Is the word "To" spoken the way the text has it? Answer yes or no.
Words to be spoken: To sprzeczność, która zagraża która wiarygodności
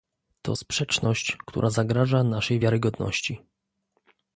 yes